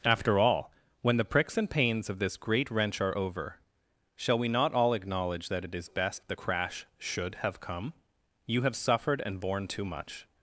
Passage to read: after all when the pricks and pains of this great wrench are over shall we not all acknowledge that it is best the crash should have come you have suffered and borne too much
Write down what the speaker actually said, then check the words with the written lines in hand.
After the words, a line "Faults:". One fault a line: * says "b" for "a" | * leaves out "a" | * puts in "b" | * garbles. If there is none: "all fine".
after all when the pricks and pains of this great wrench are over shall we not all acknowledge that it is best the crash should have come you have suffered and borne too much
Faults:
all fine